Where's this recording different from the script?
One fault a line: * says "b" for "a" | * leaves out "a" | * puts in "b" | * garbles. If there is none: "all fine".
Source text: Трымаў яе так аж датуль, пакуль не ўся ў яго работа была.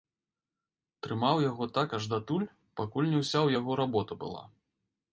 * says "яго" for "яе"